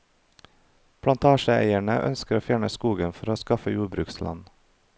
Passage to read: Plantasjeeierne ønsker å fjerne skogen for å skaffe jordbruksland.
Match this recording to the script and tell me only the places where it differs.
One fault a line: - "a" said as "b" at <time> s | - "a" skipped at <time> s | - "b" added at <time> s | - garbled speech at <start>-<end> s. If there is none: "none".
none